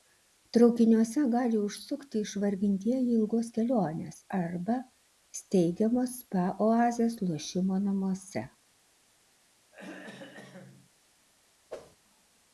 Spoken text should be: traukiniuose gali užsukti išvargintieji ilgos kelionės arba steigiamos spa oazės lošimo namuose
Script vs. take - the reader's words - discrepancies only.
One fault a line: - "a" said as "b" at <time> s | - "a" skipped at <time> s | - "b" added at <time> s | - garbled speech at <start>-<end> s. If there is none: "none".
none